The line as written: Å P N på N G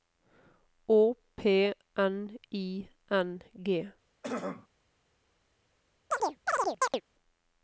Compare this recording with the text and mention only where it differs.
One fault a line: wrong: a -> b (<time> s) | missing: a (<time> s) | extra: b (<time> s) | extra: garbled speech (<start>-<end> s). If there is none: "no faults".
wrong: på -> I (2.5 s)